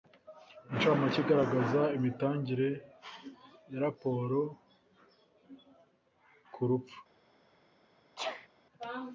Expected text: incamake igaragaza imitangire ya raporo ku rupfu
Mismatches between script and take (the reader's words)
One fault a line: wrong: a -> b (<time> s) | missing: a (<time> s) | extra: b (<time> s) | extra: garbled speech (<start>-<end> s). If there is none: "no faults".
no faults